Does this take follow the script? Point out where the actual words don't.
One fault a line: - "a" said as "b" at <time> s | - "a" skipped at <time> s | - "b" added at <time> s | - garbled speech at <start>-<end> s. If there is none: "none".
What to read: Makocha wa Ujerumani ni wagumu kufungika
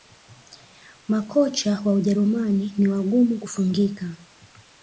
none